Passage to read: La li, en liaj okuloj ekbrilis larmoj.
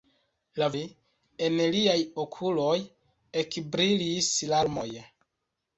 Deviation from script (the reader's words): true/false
false